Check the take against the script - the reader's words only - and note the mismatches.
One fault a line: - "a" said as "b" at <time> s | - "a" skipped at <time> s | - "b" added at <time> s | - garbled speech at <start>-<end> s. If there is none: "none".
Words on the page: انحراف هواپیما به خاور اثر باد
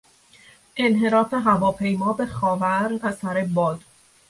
none